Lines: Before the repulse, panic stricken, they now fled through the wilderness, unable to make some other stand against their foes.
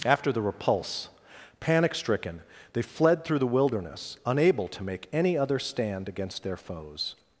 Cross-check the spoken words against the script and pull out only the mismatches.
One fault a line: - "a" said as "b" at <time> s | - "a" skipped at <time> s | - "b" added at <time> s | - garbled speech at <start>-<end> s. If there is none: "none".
- "Before" said as "After" at 0.1 s
- "now" skipped at 2.8 s
- "some" said as "any" at 5.1 s